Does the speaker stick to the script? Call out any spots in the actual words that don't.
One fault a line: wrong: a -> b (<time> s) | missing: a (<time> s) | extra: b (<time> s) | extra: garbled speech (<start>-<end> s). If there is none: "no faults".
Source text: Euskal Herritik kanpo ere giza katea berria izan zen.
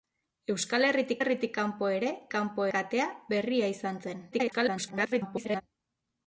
extra: Herritik (1.2 s)
wrong: giza -> kanpo (2.3 s)
extra: garbled speech (4.3-5.6 s)